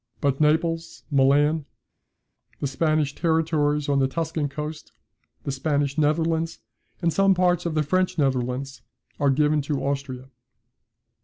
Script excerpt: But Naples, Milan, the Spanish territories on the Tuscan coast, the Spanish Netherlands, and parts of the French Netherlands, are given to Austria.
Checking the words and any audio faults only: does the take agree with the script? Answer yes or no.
no